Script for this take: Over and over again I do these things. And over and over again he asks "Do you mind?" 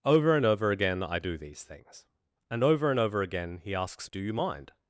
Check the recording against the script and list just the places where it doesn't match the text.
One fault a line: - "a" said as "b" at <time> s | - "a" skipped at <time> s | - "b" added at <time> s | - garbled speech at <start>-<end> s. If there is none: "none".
none